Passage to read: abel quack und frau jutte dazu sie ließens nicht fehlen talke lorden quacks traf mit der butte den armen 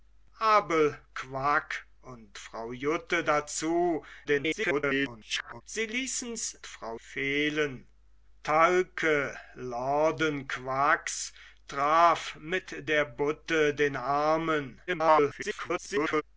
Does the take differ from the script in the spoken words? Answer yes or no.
yes